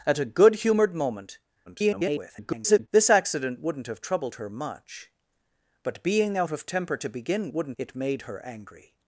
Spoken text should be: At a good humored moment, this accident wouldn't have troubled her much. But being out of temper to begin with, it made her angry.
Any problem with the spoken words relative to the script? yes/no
yes